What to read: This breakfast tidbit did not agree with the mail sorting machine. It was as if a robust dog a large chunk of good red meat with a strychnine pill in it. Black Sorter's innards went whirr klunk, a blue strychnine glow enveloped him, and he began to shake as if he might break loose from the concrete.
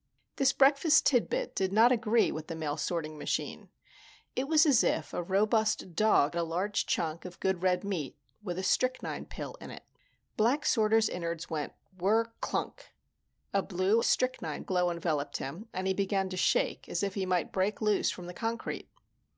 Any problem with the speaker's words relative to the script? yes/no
no